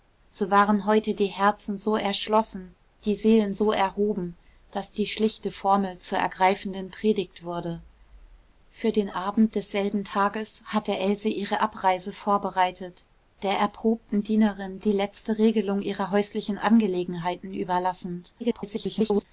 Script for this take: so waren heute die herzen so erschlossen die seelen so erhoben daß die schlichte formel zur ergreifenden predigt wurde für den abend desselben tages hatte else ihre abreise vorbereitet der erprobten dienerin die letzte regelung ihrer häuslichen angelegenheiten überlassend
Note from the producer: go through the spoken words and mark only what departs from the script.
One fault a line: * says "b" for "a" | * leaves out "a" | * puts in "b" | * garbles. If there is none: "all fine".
* garbles